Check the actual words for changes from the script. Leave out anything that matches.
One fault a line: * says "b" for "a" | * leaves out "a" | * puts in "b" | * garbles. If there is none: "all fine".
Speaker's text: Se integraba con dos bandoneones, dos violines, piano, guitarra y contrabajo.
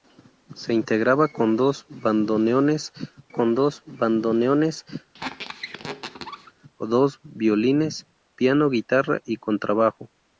* puts in "con dos bandoneones"